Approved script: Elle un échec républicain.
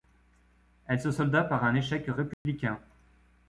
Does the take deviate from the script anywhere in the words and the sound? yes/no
yes